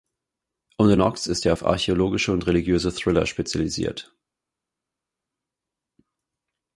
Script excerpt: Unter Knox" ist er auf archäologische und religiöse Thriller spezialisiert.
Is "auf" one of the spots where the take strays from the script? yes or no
no